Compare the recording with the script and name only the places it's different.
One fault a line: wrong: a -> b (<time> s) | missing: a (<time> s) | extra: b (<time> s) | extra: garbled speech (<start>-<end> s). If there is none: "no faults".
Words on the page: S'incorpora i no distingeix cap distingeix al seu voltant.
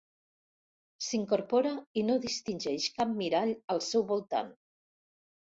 wrong: distingeix -> mirall (3.2 s)